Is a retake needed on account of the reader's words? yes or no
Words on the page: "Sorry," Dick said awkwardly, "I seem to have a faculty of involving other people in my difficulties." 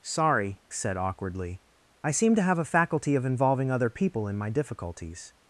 yes